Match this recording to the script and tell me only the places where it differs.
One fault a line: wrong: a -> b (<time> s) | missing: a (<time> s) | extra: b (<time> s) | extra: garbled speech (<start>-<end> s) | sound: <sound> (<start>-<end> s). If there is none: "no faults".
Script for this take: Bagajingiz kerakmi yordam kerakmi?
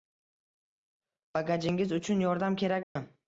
wrong: kerakmi -> uchun (2.0 s)
sound: dropout (2.8-3.0 s)